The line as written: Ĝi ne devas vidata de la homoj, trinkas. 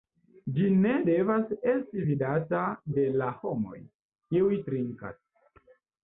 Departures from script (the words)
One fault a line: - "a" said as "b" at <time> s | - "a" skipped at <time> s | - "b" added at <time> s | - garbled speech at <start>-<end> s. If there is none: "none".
- "esti" added at 1.7 s
- "kiuj" added at 4.3 s